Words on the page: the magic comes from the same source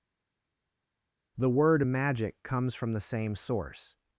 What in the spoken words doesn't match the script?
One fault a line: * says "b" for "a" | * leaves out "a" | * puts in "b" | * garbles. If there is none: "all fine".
* puts in "word"